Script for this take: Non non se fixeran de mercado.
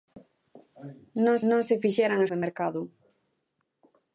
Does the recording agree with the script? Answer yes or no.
yes